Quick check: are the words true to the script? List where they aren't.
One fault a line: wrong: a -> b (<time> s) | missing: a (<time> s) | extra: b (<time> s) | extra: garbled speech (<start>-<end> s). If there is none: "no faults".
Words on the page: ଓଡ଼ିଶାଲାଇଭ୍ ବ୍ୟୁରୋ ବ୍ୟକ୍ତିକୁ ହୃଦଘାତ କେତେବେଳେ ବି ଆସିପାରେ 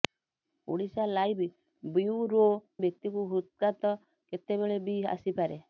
no faults